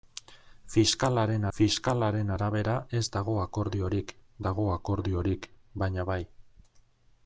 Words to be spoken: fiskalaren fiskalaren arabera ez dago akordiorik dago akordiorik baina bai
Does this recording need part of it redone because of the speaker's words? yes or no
no